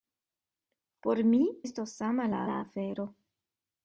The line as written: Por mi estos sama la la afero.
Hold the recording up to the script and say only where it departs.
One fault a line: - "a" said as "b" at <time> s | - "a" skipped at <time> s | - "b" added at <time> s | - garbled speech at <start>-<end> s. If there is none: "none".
none